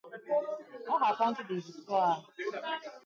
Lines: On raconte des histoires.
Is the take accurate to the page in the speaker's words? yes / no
yes